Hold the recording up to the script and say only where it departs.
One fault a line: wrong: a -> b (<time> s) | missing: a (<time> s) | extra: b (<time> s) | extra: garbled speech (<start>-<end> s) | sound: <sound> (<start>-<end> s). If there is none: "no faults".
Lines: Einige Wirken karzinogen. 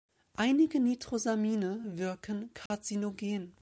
extra: Nitrosamine (0.8 s)
sound: dropout (2.7-2.7 s)